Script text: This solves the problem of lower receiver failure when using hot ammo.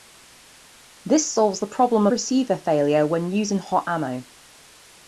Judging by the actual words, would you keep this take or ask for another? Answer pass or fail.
fail